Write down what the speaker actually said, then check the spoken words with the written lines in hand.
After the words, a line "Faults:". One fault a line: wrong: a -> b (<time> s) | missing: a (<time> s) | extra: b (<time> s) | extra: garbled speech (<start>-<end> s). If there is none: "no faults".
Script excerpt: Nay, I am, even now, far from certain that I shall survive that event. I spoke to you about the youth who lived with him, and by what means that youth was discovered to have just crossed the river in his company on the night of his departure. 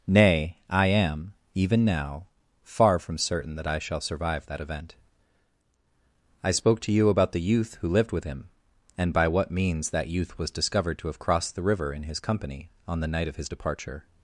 Nay, I am, even now, far from certain that I shall survive that event. I spoke to you about the youth who lived with him, and by what means that youth was discovered to have crossed the river in his company on the night of his departure.
Faults:
missing: just (11.2 s)